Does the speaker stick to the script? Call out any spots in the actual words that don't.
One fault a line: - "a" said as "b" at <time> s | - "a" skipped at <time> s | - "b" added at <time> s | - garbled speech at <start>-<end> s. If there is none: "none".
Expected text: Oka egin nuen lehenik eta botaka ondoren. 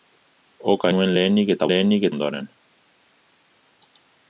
- "egin" skipped at 0.9 s
- "botaka" said as "lehenik" at 1.7 s